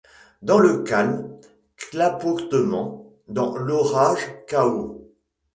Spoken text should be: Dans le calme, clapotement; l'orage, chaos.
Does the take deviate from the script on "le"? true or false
false